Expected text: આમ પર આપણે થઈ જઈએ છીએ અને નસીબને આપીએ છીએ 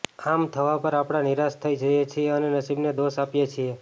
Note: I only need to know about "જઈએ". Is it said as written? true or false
true